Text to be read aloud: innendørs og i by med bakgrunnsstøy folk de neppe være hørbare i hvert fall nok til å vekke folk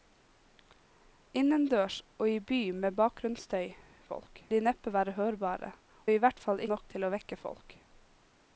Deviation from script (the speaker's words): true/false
false